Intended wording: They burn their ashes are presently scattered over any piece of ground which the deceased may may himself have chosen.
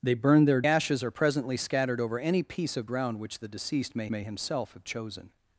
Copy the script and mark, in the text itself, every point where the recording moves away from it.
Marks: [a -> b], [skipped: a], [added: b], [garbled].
They burn their ashes are presently scattered over any piece of ground which the deceased may may himself have chosen.